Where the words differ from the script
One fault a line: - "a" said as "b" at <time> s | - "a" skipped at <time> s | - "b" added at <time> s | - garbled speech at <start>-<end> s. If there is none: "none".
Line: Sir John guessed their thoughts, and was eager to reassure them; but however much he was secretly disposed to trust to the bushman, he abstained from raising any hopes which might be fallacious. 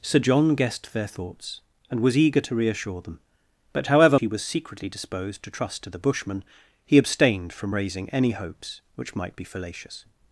- "much" skipped at 4.2 s